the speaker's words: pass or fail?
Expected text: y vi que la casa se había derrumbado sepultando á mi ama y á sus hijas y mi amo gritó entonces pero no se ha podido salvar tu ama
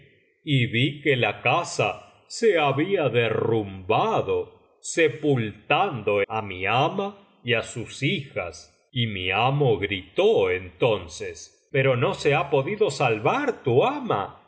pass